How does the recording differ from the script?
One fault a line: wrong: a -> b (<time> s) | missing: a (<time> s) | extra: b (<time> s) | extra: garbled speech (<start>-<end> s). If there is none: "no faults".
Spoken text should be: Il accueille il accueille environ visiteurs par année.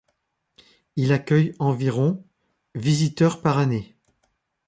missing: il accueille (1.5 s)